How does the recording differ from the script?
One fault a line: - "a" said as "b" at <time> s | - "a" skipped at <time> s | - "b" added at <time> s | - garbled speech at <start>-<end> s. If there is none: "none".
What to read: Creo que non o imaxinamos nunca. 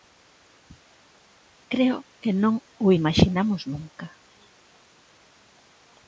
none